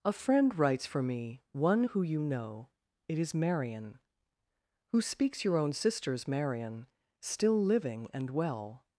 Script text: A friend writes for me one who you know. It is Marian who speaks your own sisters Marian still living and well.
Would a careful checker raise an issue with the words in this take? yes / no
no